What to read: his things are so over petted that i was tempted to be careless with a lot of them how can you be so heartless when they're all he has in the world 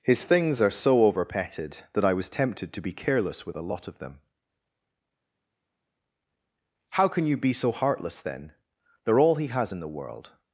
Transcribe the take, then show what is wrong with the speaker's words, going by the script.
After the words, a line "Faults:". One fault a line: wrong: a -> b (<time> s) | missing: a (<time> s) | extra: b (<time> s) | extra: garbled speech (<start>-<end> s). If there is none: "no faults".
his things are so over petted that i was tempted to be careless with a lot of them how can you be so heartless then they're all he has in the world
Faults:
wrong: when -> then (8.2 s)